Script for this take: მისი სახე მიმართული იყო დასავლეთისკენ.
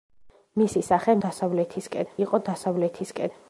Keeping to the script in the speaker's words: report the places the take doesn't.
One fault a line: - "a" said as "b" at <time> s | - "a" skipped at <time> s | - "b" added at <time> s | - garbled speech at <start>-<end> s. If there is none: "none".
- "მიმართული" said as "დასავლეთისკენ" at 1.2 s